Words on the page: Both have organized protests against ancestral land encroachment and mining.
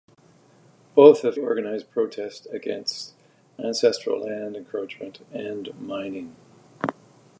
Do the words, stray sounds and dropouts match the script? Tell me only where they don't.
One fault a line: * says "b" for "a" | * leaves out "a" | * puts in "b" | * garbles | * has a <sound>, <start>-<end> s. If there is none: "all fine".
all fine